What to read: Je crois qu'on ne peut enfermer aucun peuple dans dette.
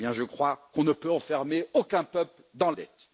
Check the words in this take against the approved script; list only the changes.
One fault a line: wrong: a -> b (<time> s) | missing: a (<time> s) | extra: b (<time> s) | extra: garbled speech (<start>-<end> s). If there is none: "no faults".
no faults